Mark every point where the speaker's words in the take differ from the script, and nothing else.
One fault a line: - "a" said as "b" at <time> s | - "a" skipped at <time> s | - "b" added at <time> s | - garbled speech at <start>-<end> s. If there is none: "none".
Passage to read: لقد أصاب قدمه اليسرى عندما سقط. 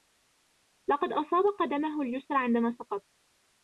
none